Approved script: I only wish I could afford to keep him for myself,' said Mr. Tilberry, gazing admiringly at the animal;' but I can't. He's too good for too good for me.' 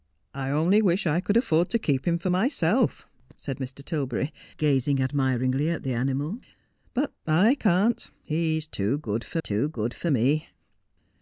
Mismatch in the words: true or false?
false